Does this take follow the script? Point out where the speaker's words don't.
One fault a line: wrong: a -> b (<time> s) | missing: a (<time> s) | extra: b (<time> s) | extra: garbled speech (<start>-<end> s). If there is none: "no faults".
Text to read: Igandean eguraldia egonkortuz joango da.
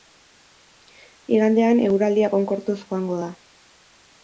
no faults